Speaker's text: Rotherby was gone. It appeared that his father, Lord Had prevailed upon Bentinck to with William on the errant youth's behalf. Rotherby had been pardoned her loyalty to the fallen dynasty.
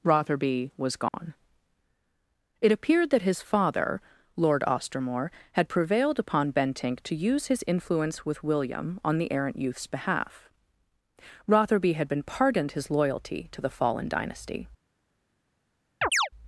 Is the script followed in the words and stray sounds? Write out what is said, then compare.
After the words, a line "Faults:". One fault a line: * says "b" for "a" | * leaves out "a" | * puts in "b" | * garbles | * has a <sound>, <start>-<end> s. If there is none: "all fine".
Rotherby was gone. It appeared that his father, Lord Ostermore, had prevailed upon Bentinck to use his influence with William on the errant youth's behalf. Rotherby had been pardoned his loyalty to the fallen dynasty.
Faults:
* has a dropout, 1.1-1.1 s
* puts in "Ostermore"
* puts in "use his influence"
* says "his" for "her"
* has a chirp, 16.0-16.3 s